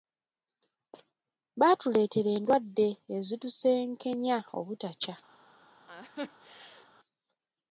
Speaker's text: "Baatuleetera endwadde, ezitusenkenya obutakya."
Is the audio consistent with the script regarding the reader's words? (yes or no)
yes